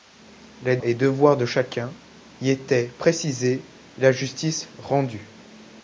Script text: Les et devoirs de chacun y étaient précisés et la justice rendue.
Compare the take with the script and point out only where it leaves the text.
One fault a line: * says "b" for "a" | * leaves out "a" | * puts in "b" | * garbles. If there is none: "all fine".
all fine